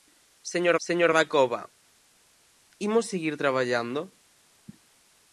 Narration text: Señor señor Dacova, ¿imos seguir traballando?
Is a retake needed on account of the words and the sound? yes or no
no